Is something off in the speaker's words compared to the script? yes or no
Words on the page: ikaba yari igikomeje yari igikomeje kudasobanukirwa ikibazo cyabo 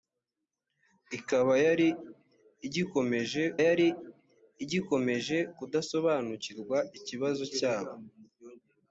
no